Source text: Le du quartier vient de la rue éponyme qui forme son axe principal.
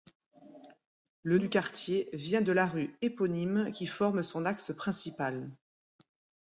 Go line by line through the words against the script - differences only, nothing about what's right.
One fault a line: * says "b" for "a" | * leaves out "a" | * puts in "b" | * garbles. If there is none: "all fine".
all fine